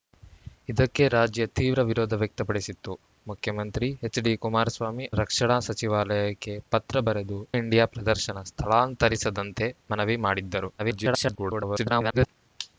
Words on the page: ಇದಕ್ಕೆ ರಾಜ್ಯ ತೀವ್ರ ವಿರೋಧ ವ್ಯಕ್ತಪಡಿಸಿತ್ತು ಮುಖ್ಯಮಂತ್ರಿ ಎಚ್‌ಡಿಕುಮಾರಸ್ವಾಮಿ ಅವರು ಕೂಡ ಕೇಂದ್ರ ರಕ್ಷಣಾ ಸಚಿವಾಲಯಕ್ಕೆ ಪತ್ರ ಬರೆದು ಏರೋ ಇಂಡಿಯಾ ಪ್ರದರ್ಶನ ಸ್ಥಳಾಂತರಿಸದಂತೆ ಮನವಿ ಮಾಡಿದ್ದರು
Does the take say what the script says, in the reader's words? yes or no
no